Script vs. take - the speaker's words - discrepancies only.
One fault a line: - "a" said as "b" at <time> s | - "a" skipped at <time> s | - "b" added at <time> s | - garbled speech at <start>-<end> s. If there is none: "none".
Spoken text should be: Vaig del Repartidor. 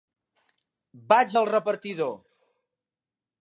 none